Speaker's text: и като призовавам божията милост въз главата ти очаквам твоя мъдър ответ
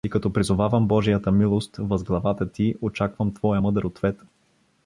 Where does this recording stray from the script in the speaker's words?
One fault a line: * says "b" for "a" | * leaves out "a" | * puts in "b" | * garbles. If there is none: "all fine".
all fine